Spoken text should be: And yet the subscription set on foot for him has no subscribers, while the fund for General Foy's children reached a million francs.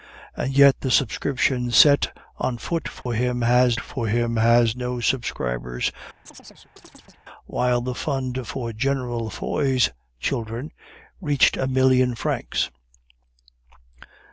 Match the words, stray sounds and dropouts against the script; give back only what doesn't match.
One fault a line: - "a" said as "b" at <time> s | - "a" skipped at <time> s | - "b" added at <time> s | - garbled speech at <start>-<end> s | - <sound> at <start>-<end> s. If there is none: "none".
- dropout at 3.0-3.1 s
- "for him has" added at 3.8 s
- chirp at 6.3-7.2 s